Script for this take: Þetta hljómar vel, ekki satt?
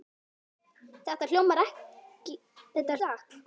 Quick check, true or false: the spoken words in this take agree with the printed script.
false